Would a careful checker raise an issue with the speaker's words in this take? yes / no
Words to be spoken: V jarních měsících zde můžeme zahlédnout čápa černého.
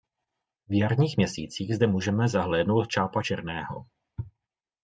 no